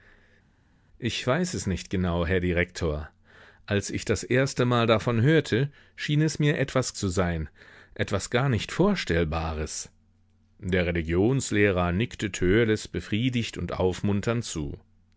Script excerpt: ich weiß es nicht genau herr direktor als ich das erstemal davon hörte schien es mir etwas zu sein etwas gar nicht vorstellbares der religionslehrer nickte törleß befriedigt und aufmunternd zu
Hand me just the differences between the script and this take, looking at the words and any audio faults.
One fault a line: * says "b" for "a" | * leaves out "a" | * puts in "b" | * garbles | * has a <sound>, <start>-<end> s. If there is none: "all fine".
all fine